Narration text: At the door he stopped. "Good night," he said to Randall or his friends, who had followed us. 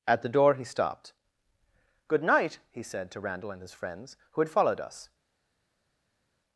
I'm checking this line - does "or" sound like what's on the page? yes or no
no